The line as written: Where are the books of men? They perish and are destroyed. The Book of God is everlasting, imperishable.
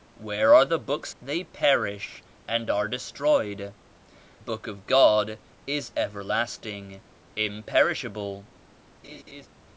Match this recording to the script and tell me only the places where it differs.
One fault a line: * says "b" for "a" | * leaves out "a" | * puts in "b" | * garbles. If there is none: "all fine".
* leaves out "of men"
* leaves out "The"